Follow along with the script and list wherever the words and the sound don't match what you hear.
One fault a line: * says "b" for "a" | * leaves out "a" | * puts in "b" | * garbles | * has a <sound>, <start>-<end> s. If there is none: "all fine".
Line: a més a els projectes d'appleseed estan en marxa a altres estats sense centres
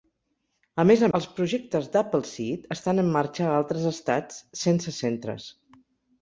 all fine